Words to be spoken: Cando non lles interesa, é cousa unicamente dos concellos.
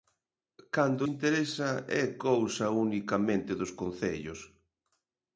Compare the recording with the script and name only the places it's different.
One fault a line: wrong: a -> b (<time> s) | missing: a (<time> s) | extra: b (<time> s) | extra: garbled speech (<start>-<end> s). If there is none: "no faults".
missing: non lles (1.0 s)